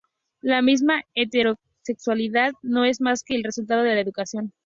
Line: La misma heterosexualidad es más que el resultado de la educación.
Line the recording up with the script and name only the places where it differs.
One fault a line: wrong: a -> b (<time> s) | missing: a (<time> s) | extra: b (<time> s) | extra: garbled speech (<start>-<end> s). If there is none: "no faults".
extra: no (2.6 s)